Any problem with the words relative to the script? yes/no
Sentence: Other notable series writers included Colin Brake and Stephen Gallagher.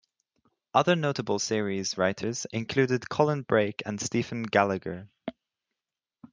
no